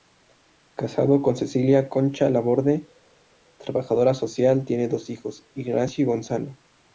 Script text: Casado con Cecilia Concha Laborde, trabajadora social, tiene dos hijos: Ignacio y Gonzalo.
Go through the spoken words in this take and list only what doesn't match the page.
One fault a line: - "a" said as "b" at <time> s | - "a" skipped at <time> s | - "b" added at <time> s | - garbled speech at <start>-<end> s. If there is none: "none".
none